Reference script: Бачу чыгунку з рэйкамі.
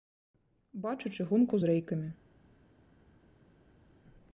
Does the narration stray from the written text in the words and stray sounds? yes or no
no